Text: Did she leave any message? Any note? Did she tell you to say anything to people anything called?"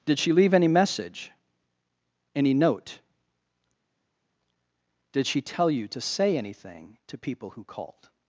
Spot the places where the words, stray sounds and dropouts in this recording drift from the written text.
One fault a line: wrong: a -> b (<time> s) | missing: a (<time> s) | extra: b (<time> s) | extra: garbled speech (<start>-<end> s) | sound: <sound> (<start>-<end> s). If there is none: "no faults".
wrong: anything -> who (7.5 s)